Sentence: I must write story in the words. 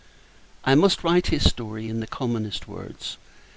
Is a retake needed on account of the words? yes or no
yes